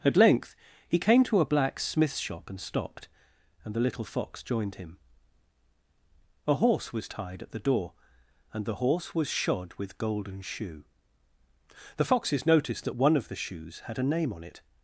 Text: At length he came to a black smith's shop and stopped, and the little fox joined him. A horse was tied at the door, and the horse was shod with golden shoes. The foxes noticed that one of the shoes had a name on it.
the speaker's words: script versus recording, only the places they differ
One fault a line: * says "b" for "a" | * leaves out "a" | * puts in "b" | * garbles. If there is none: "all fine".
* says "shoe" for "shoes"